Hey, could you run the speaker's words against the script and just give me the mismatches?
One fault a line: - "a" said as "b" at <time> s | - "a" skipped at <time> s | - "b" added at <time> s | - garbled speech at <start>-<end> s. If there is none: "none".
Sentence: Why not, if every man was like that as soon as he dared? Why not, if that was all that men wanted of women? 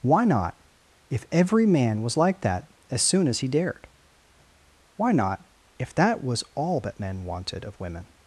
none